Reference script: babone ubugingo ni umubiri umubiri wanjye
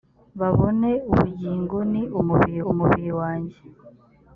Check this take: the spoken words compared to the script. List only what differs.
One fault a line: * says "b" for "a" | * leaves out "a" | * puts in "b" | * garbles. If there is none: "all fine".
all fine